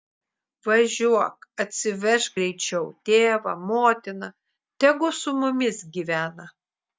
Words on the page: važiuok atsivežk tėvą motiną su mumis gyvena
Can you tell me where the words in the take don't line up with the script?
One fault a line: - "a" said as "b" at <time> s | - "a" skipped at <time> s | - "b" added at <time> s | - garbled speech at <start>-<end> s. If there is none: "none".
- "greičiau" added at 2.4 s
- "tegu" added at 4.9 s